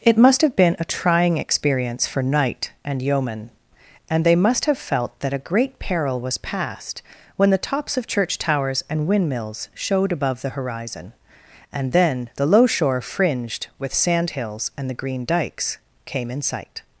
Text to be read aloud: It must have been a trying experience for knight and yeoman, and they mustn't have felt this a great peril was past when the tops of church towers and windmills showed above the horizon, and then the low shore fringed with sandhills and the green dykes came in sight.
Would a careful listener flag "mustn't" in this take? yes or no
yes